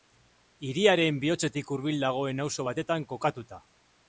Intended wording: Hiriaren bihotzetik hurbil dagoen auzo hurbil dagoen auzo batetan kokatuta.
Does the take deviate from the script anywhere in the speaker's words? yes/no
yes